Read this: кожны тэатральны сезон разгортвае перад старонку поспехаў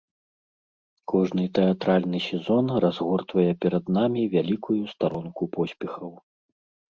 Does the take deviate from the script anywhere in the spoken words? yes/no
yes